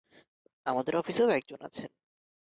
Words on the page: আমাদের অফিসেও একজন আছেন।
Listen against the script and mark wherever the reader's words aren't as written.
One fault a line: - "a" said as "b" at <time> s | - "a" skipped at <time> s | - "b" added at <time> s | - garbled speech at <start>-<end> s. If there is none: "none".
none